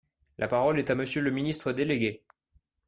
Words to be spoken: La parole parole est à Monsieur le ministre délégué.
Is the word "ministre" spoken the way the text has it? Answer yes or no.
yes